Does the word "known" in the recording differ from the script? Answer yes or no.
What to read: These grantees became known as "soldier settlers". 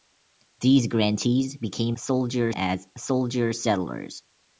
yes